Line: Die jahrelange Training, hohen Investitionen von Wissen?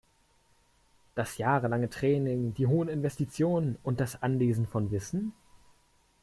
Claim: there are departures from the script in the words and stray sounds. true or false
true